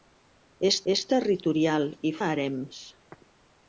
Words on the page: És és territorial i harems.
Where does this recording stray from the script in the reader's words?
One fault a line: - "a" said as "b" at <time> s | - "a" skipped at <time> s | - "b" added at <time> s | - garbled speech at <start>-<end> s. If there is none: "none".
none